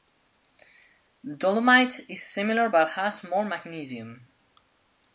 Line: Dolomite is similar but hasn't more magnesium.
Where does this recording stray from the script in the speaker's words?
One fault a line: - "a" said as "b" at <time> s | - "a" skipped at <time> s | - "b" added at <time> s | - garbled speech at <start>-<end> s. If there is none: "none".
- "hasn't" said as "has" at 2.9 s